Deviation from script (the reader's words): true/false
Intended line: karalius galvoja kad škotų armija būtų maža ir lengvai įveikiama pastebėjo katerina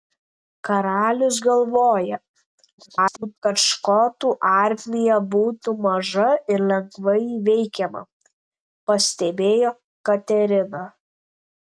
true